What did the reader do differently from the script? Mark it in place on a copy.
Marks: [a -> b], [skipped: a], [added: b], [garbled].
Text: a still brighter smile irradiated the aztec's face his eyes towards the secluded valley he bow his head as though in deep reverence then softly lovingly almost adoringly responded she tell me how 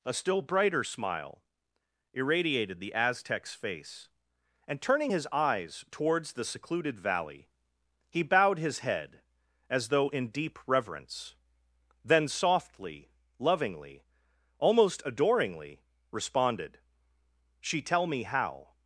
a still brighter smile irradiated the aztec's face [added: and turning] his eyes towards the secluded valley he [bow -> bowed] his head as though in deep reverence then softly lovingly almost adoringly responded she tell me how